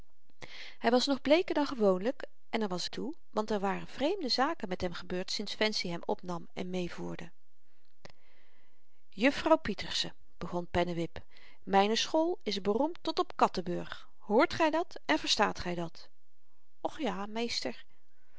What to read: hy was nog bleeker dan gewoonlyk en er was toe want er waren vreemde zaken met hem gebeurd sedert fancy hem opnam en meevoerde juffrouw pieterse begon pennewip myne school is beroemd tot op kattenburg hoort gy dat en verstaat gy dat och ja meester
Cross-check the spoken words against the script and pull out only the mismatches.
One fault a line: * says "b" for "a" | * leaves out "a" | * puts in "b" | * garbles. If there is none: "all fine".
all fine